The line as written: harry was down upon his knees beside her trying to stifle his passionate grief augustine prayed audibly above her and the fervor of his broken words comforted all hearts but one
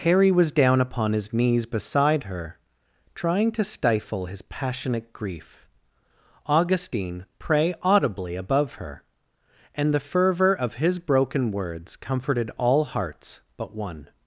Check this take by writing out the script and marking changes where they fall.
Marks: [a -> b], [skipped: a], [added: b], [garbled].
harry was down upon his knees beside her trying to stifle his passionate grief augustine [prayed -> pray] audibly above her and the fervor of his broken words comforted all hearts but one